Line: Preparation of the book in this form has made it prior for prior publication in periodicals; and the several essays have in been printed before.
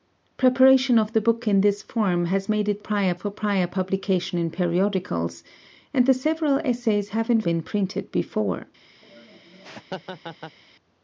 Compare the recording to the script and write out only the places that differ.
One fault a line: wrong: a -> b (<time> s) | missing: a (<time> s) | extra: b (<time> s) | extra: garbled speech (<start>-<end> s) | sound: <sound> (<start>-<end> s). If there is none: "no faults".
sound: laugh (9.0-10.6 s)